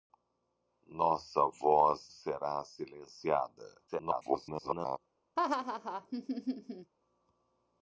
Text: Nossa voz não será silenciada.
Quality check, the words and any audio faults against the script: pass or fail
fail